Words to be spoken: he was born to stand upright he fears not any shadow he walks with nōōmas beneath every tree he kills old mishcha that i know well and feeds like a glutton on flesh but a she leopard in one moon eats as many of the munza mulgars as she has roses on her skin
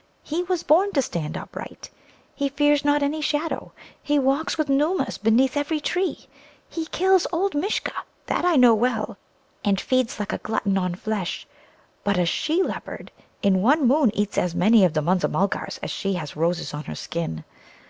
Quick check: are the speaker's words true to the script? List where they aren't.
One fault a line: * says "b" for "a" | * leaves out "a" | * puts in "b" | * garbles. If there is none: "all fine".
all fine